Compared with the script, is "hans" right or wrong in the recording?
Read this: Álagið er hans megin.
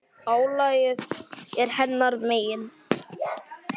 wrong